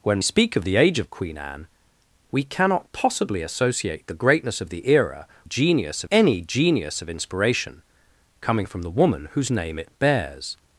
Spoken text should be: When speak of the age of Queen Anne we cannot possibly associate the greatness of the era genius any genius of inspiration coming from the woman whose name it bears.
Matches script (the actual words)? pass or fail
pass